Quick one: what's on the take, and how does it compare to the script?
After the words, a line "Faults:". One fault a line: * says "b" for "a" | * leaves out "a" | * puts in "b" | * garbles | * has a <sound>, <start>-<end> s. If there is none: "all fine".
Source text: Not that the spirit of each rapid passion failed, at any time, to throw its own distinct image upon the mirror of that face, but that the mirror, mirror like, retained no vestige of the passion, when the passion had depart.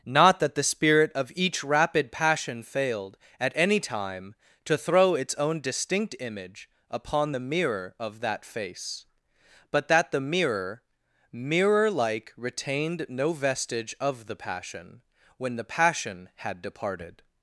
Not that the spirit of each rapid passion failed, at any time, to throw its own distinct image upon the mirror of that face, but that the mirror, mirror like, retained no vestige of the passion, when the passion had departed.
Faults:
* says "departed" for "depart"